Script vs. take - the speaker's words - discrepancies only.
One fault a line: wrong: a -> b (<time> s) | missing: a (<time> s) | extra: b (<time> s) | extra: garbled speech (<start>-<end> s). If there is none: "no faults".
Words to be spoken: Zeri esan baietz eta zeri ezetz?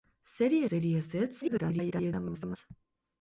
missing: esan baietz eta (0.6 s)
extra: garbled speech (1.4-2.6 s)